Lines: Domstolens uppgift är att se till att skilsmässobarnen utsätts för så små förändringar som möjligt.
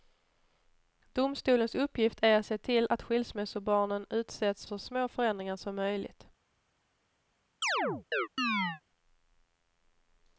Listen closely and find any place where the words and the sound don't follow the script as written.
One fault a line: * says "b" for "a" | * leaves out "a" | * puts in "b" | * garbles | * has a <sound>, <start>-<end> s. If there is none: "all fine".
* leaves out "för"
* has a chirp, 7.6-8.8 s